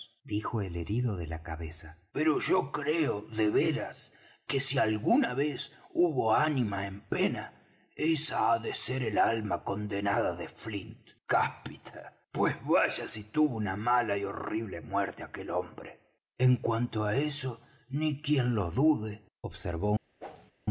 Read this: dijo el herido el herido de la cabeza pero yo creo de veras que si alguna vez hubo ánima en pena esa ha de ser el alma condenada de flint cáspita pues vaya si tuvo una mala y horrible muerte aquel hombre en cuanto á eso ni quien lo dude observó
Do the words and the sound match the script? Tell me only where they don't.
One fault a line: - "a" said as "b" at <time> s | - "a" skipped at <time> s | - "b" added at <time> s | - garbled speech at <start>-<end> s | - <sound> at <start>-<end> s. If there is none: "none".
- "el herido" skipped at 1.2 s
- whoosh at 20.2-20.5 s